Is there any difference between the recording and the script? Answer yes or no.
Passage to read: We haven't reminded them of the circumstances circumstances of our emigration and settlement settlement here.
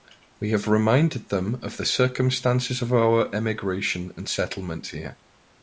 yes